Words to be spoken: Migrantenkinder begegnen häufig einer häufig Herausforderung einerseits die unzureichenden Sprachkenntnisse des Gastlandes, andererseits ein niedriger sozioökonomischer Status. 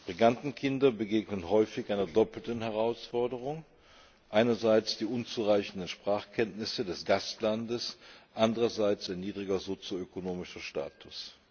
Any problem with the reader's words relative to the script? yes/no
yes